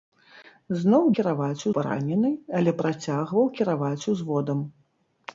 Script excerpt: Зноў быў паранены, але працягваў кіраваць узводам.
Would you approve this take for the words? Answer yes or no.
no